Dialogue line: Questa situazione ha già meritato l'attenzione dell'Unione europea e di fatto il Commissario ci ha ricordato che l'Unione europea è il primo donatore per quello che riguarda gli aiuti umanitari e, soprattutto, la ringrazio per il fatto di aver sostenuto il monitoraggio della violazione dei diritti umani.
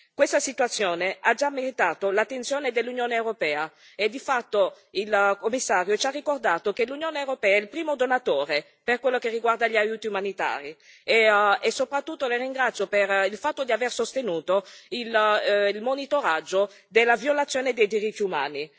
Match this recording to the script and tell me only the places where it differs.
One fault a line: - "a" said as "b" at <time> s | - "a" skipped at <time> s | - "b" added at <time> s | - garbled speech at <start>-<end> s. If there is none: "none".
none